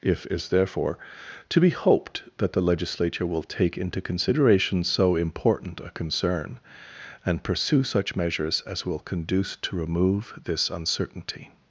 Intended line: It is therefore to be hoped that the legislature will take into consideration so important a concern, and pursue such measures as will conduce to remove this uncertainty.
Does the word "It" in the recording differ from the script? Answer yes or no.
yes